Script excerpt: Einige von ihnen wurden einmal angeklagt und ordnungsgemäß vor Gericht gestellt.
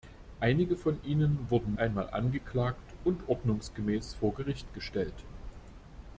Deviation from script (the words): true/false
false